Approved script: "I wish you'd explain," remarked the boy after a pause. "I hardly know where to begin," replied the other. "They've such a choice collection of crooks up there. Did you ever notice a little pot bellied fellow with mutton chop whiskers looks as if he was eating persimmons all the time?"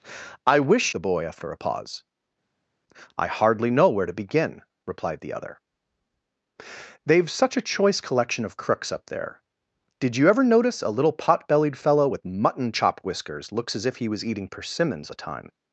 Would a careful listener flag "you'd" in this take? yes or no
yes